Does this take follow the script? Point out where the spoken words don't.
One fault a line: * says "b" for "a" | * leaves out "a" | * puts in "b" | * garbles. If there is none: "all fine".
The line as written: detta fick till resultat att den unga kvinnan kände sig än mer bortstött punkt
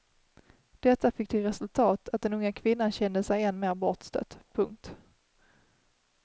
all fine